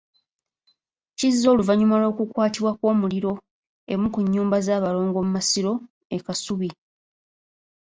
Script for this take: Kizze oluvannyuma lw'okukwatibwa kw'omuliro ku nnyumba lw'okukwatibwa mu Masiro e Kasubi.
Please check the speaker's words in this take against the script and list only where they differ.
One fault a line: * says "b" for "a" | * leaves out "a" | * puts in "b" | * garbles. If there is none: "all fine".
* puts in "emu"
* says "z'abalongo" for "lw'okukwatibwa"